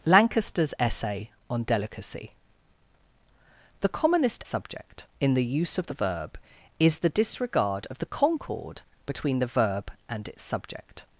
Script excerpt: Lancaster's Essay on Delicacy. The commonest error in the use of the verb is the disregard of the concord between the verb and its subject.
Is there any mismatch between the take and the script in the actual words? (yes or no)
yes